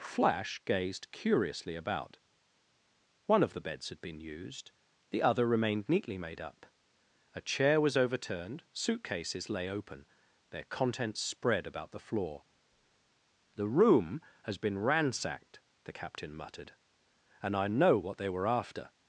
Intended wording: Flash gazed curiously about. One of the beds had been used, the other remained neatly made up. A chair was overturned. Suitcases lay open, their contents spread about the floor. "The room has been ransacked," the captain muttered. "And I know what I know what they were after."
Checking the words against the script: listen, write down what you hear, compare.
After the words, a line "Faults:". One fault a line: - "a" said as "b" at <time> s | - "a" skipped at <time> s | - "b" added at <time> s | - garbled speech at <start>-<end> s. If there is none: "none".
Flash gazed curiously about. One of the beds had been used, the other remained neatly made up. A chair was overturned. Suitcases lay open, their contents spread about the floor. "The room has been ransacked," the captain muttered. "And I know what they were after."
Faults:
- "I know what" skipped at 18.2 s